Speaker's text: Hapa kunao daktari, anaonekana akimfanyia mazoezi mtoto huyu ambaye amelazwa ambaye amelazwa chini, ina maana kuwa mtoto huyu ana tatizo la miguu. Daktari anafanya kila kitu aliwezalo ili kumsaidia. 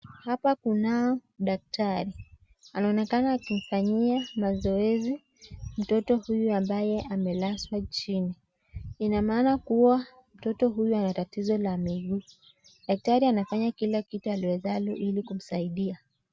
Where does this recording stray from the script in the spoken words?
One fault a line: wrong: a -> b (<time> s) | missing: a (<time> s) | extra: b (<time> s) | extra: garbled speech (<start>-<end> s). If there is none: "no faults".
missing: ambaye amelazwa (7.8 s)